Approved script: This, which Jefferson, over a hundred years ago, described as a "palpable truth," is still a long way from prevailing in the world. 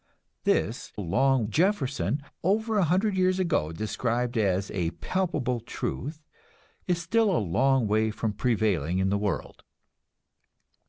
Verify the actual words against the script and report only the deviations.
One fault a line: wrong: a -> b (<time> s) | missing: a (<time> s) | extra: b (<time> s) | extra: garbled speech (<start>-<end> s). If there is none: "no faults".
wrong: which -> long (1.0 s)